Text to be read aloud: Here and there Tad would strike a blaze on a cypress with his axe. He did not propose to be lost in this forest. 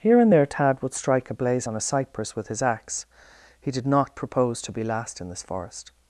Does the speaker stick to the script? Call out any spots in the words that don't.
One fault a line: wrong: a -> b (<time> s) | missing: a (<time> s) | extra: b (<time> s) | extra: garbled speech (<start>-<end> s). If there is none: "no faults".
wrong: lost -> last (4.8 s)